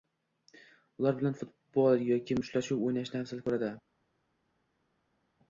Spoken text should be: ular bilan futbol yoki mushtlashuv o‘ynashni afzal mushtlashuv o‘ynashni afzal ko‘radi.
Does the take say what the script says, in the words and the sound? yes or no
no